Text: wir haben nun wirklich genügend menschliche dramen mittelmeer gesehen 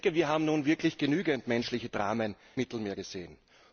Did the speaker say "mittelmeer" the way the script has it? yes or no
yes